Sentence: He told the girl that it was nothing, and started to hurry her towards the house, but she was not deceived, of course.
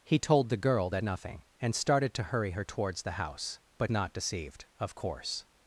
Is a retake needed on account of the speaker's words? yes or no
yes